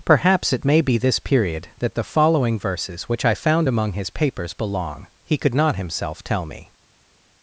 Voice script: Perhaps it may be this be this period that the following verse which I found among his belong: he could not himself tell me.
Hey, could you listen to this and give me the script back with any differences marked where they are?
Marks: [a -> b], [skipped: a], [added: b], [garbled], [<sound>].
Perhaps it may be this [skipped: be this] period that the following [verse -> verses] which I found among his [added: papers] belong: he could not himself tell me.